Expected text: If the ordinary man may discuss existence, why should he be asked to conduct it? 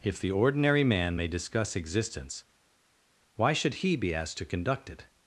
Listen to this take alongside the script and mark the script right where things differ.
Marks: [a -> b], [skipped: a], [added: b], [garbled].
If the ordinary man may discuss existence, why should he be asked to conduct it?